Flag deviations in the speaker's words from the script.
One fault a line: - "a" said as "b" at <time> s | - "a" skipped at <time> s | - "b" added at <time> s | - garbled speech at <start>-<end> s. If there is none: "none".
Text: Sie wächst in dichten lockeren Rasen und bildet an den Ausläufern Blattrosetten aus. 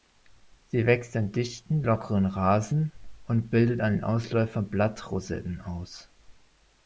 none